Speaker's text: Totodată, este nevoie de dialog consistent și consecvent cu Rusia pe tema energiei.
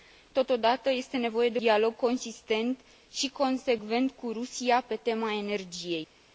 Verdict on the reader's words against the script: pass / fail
pass